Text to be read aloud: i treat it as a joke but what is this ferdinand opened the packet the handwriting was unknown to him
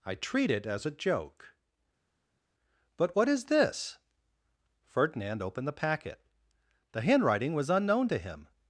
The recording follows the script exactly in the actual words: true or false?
true